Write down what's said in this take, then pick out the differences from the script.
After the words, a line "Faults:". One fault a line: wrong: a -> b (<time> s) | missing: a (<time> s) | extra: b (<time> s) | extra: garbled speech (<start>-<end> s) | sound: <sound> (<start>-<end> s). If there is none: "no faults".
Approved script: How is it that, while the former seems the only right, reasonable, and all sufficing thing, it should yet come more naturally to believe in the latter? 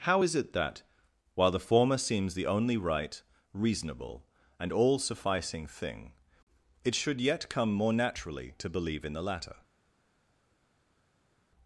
How is it that, while the former seems the only right, reasonable, and all sufficing thing, it should yet come more naturally to believe in the latter?
Faults:
no faults